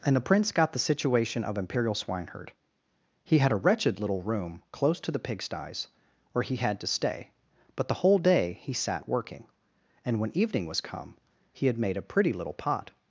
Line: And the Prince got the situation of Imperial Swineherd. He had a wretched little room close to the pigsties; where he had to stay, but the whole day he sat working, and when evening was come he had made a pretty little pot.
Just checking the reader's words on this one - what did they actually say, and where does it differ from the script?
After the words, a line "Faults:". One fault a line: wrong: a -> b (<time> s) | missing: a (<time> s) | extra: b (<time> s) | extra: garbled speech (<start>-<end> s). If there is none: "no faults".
And the Prince got the situation of Imperial Swineherd. He had a wretched little room close to the pigsties; where he had to stay, but the whole day he sat working, and when evening was come he had made a pretty little pot.
Faults:
no faults